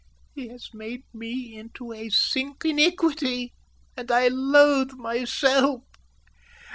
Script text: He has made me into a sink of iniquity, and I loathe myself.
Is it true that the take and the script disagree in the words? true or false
true